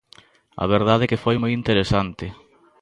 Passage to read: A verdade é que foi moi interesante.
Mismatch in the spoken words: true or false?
false